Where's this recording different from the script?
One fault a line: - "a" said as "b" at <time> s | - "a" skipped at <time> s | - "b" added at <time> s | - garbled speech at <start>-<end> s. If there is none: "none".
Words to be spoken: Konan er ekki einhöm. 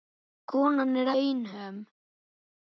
- "ekki" skipped at 1.1 s